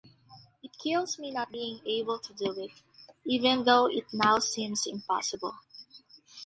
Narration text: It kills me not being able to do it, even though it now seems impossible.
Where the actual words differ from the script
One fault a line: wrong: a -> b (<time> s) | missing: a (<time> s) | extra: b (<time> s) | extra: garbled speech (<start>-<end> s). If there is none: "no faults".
no faults